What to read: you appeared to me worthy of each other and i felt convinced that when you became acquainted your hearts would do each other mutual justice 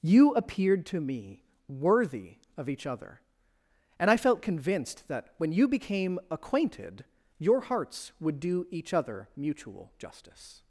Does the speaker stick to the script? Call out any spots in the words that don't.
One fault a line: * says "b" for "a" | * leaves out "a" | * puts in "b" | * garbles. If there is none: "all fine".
all fine